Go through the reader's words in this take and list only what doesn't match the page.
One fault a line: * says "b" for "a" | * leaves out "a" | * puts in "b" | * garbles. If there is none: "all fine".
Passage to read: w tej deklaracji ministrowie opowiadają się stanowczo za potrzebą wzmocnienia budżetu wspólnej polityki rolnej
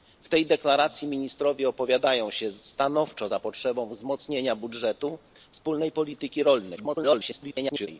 * garbles